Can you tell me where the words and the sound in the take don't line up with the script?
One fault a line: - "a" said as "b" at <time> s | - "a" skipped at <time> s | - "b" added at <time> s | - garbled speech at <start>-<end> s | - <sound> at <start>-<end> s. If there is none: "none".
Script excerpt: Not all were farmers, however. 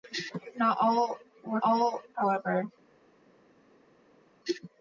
- "farmers" said as "all" at 1.6 s